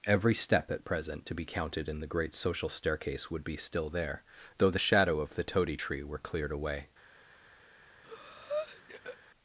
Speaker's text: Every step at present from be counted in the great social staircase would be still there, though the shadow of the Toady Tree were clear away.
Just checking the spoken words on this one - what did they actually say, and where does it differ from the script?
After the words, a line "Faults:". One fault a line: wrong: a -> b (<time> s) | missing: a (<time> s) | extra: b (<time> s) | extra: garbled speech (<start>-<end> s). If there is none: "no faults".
Every step at present to be counted in the great social staircase would be still there, though the shadow of the Toady Tree were cleared away.
Faults:
wrong: from -> to (1.2 s)
wrong: clear -> cleared (6.2 s)